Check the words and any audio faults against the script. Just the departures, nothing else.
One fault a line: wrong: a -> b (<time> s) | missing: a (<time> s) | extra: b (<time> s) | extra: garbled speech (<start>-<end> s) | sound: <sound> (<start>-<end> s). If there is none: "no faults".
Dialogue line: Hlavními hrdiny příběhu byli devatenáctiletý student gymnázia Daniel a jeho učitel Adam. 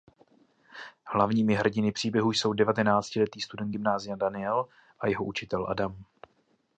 wrong: byli -> jsou (2.3 s)